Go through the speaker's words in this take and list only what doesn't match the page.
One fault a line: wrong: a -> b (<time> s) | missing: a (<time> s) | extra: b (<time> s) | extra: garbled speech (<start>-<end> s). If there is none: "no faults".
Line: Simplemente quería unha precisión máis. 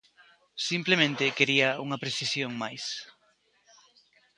no faults